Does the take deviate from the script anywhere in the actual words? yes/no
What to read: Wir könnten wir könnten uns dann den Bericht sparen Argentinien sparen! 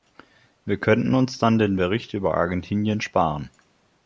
yes